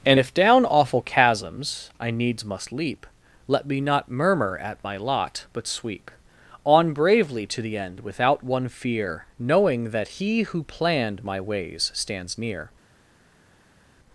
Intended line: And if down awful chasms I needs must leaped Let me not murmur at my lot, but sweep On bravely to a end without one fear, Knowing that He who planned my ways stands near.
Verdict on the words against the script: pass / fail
fail